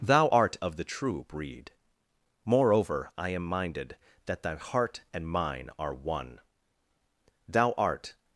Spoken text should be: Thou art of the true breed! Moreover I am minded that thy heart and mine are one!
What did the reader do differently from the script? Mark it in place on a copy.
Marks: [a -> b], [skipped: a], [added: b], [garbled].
Thou art of the true breed! Moreover I am minded that thy heart and mine are one! [added: Thou art]